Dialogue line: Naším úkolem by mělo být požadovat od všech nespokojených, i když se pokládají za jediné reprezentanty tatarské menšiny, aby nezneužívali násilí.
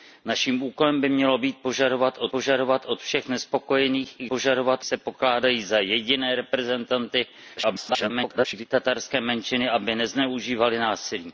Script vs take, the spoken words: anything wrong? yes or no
yes